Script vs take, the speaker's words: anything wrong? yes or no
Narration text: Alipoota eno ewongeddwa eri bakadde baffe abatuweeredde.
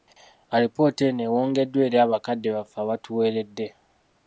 no